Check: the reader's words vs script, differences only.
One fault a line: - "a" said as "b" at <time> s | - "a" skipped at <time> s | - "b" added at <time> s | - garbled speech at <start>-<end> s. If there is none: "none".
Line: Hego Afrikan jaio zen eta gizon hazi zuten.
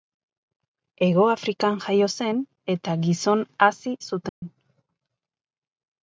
none